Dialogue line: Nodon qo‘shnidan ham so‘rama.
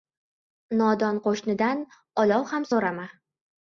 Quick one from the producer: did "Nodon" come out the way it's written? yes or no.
yes